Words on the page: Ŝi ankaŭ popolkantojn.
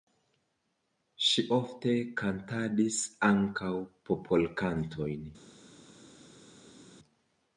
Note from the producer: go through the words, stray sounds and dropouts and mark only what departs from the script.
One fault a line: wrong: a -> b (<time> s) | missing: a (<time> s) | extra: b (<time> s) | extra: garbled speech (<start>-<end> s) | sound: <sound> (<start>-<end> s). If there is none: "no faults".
extra: ofte kantadis (1.6 s)